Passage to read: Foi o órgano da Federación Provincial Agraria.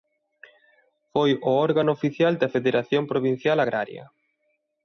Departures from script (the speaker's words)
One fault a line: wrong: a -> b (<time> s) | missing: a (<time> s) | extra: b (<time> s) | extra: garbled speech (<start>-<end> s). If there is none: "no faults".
extra: oficial (2.0 s)